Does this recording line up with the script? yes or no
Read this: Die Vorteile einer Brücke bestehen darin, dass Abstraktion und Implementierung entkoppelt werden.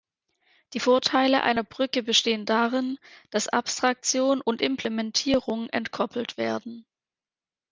yes